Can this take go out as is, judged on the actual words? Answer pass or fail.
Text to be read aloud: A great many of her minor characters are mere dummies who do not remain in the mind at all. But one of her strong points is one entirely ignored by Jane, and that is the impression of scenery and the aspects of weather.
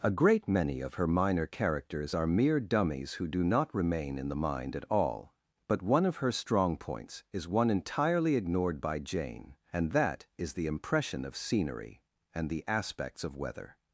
pass